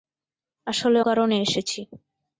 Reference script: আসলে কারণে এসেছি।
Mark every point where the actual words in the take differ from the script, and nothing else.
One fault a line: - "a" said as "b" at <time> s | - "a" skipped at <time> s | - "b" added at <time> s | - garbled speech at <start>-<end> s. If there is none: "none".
none